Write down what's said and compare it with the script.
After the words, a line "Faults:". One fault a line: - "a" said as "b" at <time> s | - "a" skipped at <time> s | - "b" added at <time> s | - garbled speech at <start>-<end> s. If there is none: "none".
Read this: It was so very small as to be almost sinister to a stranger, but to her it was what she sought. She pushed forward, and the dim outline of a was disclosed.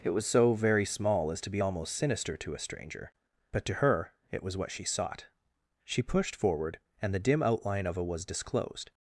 It was so very small as to be almost sinister to a stranger, but to her it was what she sought. She pushed forward, and the dim outline of a was disclosed.
Faults:
none